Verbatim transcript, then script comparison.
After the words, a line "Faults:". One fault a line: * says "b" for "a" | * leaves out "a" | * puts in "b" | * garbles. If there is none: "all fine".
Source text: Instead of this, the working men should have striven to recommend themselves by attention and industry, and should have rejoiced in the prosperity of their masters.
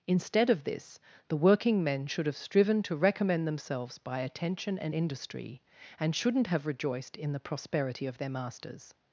Instead of this, the working men should have striven to recommend themselves by attention and industry, and shouldn't have rejoiced in the prosperity of their masters.
Faults:
* says "shouldn't" for "should"